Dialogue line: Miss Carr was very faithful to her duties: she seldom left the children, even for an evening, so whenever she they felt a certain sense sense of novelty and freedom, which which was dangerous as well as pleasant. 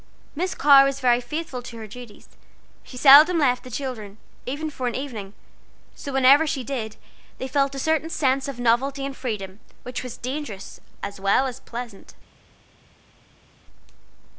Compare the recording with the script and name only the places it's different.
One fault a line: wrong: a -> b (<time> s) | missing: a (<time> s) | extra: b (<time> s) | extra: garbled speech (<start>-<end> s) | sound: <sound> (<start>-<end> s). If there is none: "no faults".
extra: did (6.6 s)
missing: sense (8.5 s)
missing: which (10.0 s)